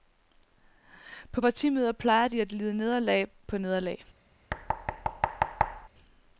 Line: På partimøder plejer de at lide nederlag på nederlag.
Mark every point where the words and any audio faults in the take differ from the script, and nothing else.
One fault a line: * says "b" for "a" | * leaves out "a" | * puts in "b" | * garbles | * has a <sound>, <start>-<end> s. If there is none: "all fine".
* has a thud, 4.5-5.9 s